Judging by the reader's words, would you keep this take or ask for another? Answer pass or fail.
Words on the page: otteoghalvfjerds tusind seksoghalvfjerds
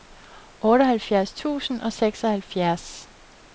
fail